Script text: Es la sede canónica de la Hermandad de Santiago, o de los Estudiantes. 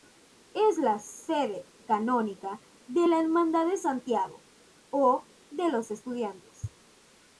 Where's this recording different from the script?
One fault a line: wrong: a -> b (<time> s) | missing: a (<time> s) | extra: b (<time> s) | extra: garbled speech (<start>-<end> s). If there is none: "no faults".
no faults